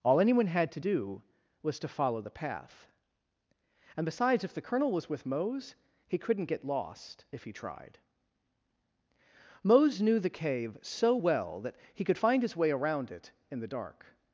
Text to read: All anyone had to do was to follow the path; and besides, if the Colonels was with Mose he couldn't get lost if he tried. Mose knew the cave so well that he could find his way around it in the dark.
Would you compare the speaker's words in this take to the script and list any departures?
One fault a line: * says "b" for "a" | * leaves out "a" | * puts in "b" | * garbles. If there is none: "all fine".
* says "Colonel" for "Colonels"